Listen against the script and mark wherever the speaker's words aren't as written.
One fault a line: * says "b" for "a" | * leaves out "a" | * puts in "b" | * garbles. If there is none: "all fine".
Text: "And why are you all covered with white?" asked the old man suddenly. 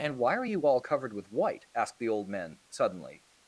* says "men" for "man"